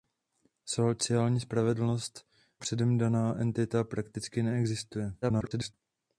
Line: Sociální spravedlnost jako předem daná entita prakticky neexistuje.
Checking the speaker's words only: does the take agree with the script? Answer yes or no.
no